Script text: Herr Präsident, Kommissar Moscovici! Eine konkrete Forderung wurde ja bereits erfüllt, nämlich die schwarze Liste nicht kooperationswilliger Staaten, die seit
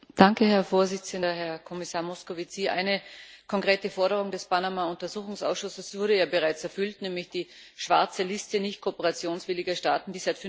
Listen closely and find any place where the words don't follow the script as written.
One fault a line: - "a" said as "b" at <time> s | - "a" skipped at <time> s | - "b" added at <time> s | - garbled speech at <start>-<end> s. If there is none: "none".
- "Herr" added at 1.2 s
- "des Panama Untersuchungsausschusses" added at 4.3 s